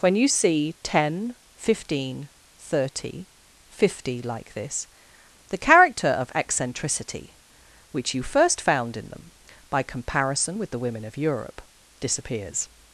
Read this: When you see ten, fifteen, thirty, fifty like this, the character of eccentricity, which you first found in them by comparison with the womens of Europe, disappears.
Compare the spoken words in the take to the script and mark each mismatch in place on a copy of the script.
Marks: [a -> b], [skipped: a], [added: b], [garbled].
When you see ten, fifteen, thirty, fifty like this, the character of eccentricity, which you first found in them by comparison with the [womens -> women] of Europe, disappears.